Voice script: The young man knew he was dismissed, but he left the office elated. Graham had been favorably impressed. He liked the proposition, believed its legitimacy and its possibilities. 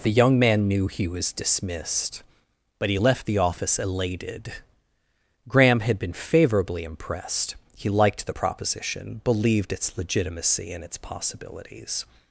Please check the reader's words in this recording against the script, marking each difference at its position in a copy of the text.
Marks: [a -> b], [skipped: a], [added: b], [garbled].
The young man knew he was dismissed, but he left the office elated. Graham had been favorably impressed. He liked the proposition, believed its legitimacy and its possibilities.